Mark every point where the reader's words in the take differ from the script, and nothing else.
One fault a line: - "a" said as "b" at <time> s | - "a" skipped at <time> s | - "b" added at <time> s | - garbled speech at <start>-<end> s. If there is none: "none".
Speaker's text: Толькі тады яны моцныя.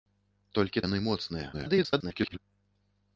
- "тады" skipped at 0.8 s
- garbled speech at 1.5-2.4 s